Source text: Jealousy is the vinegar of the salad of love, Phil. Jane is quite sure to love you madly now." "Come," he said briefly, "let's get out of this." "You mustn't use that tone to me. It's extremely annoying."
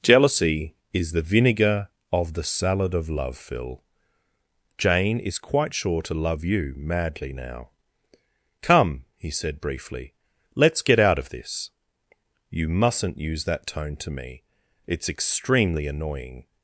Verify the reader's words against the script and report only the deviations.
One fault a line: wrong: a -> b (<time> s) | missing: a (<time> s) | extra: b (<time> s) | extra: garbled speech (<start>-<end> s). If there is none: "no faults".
no faults